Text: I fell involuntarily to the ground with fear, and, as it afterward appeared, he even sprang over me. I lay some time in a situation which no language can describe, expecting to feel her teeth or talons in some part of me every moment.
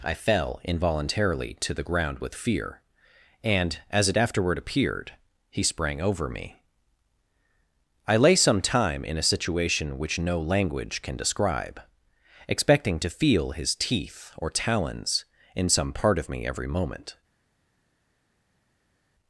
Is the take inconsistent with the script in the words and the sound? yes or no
yes